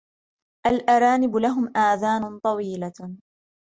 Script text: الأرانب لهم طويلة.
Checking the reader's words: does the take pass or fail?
fail